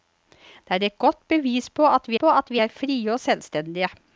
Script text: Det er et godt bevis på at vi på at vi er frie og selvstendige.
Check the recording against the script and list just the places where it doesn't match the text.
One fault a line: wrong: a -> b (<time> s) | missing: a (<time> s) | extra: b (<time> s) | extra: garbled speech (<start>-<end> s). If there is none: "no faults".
no faults